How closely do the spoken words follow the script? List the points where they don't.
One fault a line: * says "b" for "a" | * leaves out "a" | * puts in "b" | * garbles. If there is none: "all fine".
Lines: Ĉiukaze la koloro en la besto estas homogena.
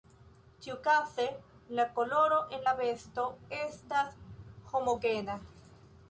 all fine